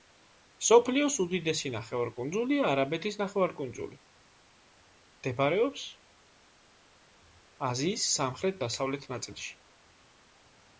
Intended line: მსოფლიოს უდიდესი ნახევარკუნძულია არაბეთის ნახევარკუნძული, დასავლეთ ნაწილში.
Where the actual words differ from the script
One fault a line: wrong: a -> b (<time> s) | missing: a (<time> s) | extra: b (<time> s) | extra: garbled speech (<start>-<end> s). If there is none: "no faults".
extra: მდებარეობს აზიის სამხრეთ (5.2 s)